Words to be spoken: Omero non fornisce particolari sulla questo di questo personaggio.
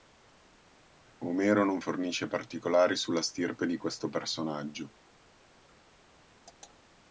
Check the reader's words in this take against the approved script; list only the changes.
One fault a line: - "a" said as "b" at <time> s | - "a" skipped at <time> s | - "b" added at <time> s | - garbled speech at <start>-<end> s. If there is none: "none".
- "questo" said as "stirpe" at 3.2 s